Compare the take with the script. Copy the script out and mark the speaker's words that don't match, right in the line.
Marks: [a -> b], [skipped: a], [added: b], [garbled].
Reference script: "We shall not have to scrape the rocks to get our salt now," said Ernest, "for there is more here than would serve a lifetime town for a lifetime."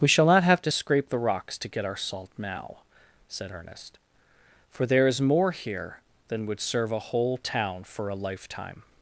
"We shall not have to scrape the rocks to get our salt now," said Ernest, "for there is more here than would serve a [lifetime -> whole] town for a lifetime."